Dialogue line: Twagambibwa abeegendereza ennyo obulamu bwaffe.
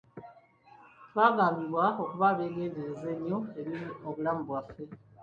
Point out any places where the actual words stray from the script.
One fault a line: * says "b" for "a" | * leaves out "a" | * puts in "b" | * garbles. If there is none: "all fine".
* puts in "okuba"
* puts in "eri"